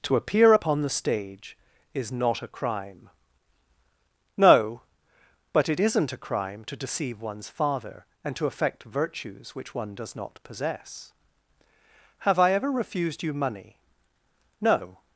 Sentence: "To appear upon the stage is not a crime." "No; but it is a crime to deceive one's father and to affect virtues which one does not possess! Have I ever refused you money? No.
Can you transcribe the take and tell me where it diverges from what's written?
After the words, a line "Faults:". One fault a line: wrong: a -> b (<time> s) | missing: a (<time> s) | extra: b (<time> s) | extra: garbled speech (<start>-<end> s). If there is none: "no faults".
"To appear upon the stage is not a crime." "No; but it isn't a crime to deceive one's father and to affect virtues which one does not possess! Have I ever refused you money? No.
Faults:
wrong: is -> isn't (5.8 s)